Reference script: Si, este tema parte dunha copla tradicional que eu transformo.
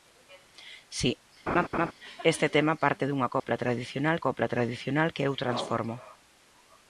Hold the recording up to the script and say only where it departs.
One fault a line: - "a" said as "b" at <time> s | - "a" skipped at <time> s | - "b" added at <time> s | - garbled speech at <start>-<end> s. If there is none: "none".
- "copla tradicional" added at 4.2 s